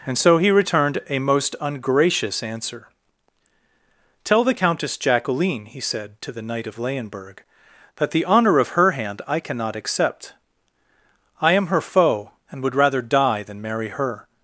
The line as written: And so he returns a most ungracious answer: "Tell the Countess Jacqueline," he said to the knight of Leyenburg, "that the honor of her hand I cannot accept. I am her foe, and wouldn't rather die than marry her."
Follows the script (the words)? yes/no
no